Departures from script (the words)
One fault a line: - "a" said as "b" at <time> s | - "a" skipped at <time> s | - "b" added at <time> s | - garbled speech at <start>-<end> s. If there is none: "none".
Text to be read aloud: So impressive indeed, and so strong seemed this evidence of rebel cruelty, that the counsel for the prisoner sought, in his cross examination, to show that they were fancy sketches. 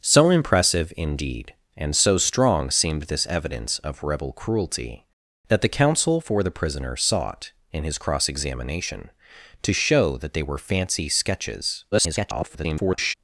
- garbled speech at 11.9-13.1 s